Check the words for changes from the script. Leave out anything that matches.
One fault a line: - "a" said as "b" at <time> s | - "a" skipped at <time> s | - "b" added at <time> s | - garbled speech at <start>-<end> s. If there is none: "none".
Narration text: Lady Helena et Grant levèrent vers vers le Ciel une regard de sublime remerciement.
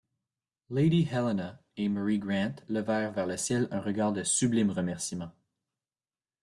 - "Mary" added at 1.9 s
- "vers" skipped at 3.2 s
- "une" said as "un" at 3.7 s